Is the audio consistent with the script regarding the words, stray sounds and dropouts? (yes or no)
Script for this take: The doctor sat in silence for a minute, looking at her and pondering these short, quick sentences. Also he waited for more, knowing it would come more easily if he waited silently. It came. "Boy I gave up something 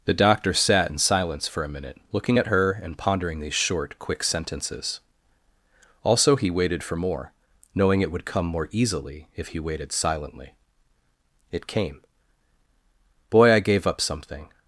yes